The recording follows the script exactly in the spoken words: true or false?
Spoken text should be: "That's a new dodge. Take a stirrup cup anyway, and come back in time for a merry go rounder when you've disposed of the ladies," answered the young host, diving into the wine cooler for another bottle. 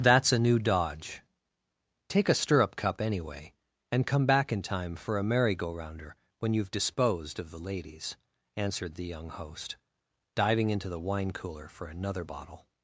true